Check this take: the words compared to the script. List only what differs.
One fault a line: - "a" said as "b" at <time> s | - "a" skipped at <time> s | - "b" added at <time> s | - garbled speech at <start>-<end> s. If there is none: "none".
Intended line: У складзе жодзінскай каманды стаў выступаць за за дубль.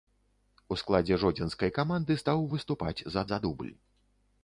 none